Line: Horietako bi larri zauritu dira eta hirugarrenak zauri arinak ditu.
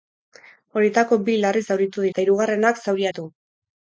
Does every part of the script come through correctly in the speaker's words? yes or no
no